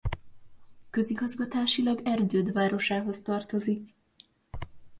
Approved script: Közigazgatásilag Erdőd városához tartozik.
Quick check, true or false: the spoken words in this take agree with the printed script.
true